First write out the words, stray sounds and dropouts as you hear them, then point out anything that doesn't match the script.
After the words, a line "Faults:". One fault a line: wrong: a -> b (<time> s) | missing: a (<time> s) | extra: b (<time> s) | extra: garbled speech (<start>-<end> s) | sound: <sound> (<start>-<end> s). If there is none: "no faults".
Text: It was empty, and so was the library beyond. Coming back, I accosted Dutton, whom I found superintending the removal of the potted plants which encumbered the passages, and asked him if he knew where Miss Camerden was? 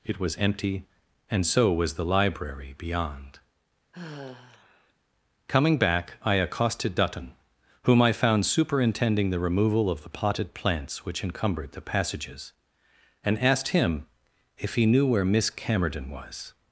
It was empty, and so was the library beyond. Coming back, I accosted Dutton, whom I found superintending the removal of the potted plants which encumbered the passages, and asked him if he knew where Miss Camerden was?
Faults:
sound: sigh (3.9-4.9 s)